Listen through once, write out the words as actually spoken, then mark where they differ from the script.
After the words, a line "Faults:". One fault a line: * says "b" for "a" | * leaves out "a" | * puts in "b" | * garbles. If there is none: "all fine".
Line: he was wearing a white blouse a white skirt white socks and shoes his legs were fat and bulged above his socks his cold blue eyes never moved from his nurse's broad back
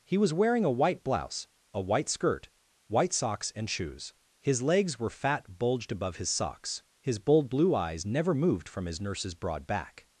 he was wearing a white blouse a white skirt white socks and shoes his legs were fat bulged above his socks his bold blue eyes never moved from his nurse's broad back
Faults:
* leaves out "and"
* says "bold" for "cold"